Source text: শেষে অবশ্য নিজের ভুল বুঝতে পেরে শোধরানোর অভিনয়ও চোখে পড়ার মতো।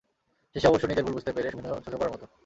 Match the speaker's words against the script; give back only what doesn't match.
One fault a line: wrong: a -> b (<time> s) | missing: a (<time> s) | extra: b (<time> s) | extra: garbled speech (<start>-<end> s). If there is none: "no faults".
missing: শোধরানোর (1.5 s)